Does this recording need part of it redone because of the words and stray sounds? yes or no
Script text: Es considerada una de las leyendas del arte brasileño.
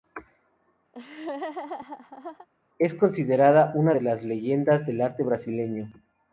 yes